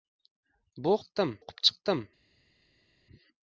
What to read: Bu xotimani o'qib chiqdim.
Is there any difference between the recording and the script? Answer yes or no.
yes